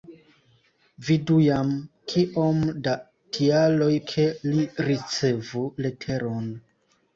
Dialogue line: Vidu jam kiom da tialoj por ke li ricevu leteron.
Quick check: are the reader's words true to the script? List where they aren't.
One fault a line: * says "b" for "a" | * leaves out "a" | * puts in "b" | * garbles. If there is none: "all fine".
* leaves out "por"